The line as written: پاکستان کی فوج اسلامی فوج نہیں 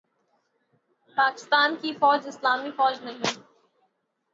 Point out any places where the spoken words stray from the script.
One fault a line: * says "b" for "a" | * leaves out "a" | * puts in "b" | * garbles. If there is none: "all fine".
all fine